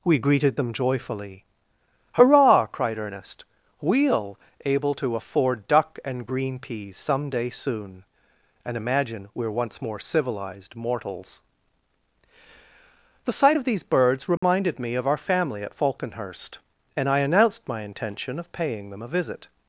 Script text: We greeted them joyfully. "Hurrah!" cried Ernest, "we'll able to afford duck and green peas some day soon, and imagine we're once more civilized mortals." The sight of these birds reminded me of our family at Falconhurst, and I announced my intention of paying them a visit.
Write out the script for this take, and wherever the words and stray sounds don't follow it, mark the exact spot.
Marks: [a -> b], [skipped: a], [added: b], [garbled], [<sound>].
We greeted them joyfully. "Hurrah!" cried Ernest, "we'll able to afford duck and green peas some day soon, and imagine we're once more civilized mortals." The sight of these birds reminded [dropout] me of our family at Falconhurst, and I announced my intention of paying them a visit.